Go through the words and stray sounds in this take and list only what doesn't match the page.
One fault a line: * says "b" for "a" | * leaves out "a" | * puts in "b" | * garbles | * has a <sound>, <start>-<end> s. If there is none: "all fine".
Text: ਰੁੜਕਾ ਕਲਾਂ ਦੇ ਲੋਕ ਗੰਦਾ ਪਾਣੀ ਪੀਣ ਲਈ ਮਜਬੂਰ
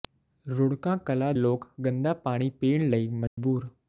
* leaves out "ਦੇ"
* has a dropout, 3.3-3.4 s